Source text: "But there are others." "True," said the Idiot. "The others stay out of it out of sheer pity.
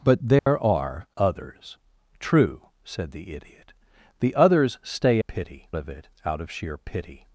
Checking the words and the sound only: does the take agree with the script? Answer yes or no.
no